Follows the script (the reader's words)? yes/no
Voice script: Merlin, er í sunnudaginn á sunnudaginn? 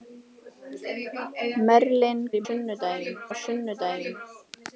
yes